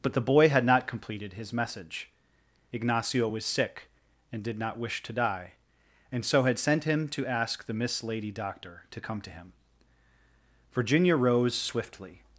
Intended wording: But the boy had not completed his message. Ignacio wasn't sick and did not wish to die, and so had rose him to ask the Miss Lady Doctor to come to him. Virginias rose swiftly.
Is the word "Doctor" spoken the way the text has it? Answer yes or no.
yes